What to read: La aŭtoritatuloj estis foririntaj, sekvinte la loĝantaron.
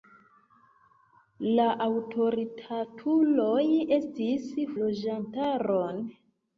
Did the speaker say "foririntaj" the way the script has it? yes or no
no